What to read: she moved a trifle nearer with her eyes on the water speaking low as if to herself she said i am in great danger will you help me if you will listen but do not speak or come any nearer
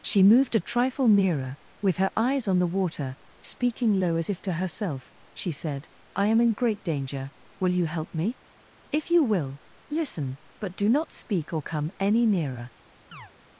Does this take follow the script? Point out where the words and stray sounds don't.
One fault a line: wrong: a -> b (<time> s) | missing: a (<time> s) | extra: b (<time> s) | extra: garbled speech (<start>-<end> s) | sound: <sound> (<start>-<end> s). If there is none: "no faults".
sound: chirp (13.1-13.3 s)